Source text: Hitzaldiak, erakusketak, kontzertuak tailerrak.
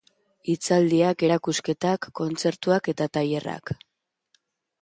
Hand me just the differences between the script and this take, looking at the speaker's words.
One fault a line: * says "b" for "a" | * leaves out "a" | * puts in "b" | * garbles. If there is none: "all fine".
* puts in "eta"